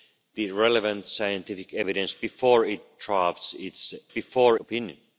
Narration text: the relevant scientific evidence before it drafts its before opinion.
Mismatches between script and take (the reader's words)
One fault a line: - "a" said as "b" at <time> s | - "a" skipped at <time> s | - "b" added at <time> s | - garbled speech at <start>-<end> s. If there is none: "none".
none